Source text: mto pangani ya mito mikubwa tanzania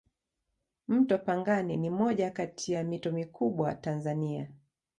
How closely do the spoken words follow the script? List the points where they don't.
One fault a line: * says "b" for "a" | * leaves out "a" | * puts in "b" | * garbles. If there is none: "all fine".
* puts in "ni moja Kati"